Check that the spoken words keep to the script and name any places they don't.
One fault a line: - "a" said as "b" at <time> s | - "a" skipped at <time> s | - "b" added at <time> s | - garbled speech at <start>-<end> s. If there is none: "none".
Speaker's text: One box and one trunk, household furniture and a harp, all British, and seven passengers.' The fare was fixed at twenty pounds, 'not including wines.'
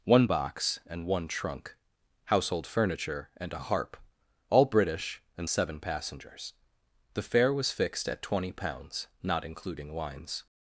none